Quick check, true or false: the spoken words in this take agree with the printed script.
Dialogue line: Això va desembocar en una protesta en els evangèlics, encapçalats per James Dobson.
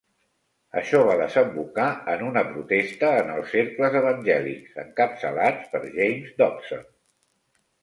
false